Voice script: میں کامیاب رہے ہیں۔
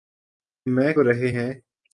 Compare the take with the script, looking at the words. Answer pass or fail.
fail